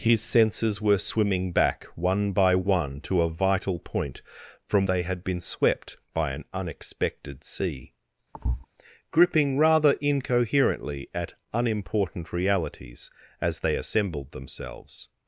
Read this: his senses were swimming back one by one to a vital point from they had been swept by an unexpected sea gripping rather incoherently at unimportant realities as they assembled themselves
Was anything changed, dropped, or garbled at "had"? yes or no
no